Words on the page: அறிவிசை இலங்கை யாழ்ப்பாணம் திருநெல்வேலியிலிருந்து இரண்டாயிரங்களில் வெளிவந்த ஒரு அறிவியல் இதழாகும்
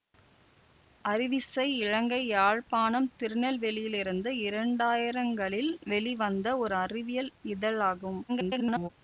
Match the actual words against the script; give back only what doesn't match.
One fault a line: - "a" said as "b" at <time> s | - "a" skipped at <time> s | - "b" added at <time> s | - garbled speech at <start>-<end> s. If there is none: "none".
- garbled speech at 8.3-8.9 s